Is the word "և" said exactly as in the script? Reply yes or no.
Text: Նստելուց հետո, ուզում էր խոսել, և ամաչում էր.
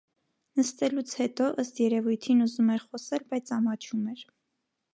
no